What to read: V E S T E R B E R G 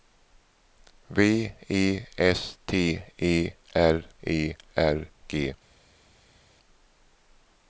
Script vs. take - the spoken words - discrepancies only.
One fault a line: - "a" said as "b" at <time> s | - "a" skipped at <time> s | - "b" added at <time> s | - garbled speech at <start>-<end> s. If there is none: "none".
- "B" skipped at 4.0 s